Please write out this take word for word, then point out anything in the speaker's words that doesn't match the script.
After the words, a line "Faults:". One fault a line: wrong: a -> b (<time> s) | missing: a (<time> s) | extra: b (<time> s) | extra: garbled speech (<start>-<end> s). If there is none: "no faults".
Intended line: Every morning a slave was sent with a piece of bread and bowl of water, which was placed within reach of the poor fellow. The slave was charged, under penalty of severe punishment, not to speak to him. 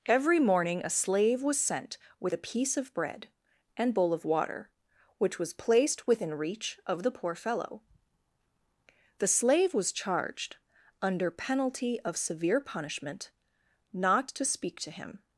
Every morning a slave was sent with a piece of bread and bowl of water, which was placed within reach of the poor fellow. The slave was charged, under penalty of severe punishment, not to speak to him.
Faults:
no faults